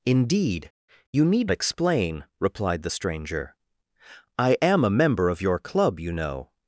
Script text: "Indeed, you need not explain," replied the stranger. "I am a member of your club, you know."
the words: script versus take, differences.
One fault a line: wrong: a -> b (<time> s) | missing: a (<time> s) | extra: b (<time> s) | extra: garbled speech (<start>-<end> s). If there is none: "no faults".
missing: not (1.5 s)